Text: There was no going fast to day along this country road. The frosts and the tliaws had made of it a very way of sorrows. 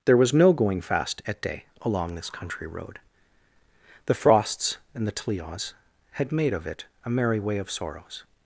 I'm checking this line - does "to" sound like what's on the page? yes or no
no